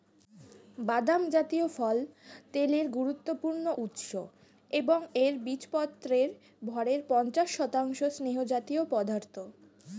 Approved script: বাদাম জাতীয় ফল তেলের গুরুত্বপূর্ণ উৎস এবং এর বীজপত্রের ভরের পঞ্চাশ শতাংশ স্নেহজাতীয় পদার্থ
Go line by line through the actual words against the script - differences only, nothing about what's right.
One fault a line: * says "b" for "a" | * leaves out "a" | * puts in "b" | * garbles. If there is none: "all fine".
all fine